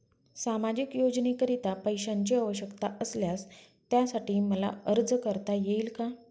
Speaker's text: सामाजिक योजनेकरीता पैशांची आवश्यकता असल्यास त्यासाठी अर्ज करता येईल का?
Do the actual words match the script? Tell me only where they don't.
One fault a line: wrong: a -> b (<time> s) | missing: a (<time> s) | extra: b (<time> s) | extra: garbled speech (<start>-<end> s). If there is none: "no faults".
extra: मला (4.4 s)